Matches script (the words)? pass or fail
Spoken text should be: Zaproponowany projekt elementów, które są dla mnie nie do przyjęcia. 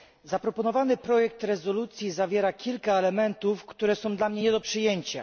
fail